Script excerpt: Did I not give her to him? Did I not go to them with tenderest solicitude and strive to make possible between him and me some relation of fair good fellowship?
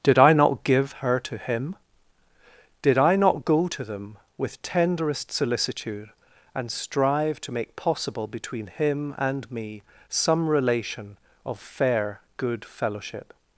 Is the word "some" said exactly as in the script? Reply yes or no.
yes